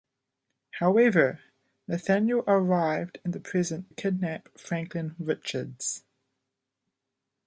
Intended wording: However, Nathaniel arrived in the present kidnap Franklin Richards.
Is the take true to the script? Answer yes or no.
yes